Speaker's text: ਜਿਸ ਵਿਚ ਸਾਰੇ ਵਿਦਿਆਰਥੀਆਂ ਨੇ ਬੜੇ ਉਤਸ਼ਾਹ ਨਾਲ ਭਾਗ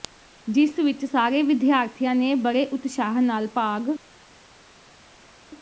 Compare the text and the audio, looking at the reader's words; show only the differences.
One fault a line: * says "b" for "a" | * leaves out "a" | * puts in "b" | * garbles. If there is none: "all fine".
all fine